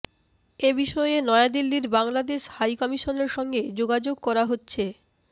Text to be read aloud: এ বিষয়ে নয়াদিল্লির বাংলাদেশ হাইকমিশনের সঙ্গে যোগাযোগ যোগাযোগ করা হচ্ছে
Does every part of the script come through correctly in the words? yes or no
no